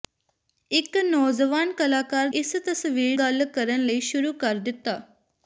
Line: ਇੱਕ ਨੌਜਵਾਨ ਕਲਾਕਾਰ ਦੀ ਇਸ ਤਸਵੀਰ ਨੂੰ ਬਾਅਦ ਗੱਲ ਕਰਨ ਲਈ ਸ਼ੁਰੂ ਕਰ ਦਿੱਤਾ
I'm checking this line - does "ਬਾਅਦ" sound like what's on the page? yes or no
no